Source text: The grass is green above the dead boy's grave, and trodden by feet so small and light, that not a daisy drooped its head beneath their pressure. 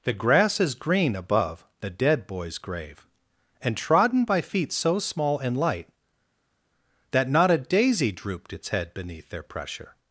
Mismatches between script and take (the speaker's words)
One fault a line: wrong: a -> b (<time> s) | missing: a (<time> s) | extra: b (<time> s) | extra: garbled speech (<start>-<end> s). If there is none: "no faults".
no faults